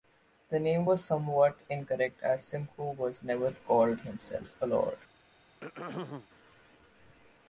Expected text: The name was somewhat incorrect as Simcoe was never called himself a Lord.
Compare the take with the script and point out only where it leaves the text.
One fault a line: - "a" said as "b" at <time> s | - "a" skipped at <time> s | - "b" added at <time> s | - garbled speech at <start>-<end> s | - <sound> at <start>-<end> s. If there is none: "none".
- throat clearing at 5.6-6.3 s